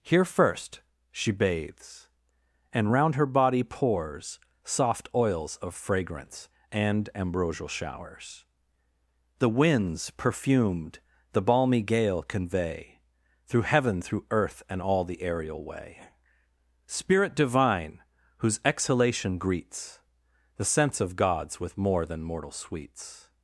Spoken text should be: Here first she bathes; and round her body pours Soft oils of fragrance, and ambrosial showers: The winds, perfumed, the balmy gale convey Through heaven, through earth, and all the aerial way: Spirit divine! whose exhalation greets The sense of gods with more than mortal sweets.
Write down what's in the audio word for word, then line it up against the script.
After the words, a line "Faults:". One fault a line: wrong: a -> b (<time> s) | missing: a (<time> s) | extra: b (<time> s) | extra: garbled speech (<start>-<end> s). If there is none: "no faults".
Here first she bathes; and round her body pours Soft oils of fragrance, and ambrosial showers: The winds, perfumed, the balmy gale convey Through heaven, through earth, and all the aerial way: Spirit divine! whose exhalation greets The sense of gods with more than mortal sweets.
Faults:
no faults